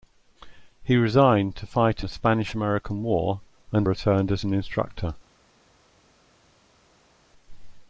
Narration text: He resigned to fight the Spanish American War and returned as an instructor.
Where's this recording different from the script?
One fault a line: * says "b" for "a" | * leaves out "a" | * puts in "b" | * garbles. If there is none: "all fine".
all fine